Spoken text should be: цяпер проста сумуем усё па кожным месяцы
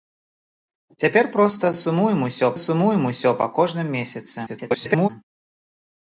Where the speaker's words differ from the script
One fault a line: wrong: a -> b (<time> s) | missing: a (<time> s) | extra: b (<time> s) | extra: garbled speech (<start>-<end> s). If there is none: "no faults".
extra: сумуем усё (2.6 s)
extra: garbled speech (4.5-5.1 s)